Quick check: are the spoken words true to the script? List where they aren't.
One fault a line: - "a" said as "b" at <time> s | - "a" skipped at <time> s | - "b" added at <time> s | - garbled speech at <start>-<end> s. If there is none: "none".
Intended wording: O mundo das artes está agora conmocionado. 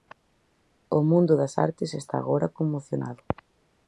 none